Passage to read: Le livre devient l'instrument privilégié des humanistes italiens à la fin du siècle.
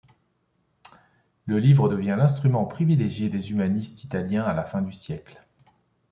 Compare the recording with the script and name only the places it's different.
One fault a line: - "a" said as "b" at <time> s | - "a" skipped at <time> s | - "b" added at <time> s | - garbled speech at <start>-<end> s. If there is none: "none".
none